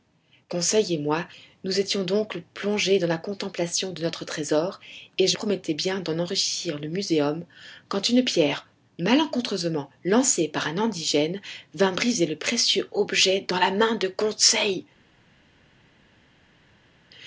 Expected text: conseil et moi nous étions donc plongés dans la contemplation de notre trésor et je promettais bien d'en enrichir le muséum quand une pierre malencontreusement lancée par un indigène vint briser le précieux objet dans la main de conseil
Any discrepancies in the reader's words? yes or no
no